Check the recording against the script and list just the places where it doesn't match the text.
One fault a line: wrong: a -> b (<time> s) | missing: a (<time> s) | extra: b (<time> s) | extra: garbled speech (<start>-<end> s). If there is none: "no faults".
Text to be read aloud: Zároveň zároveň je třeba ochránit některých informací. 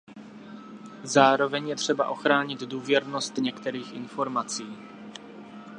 missing: zároveň (1.7 s)
extra: důvěrnost (2.6 s)